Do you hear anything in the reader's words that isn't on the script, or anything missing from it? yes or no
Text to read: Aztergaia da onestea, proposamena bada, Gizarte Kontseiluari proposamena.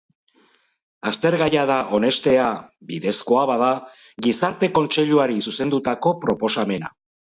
yes